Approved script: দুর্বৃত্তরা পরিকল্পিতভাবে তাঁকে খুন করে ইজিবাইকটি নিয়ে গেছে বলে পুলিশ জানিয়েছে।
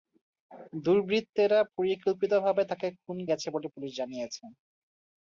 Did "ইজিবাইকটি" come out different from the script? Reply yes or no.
yes